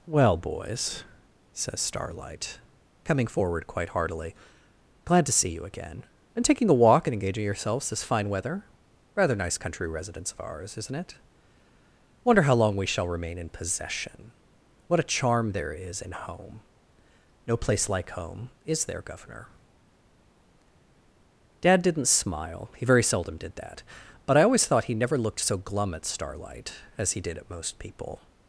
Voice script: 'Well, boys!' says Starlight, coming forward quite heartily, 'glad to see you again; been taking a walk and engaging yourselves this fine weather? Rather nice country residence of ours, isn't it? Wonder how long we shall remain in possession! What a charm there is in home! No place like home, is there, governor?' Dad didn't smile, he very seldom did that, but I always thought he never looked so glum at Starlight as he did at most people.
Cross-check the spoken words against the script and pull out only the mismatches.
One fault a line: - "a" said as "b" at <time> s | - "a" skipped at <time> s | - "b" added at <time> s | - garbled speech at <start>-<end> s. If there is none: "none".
- "been" said as "and" at 6.3 s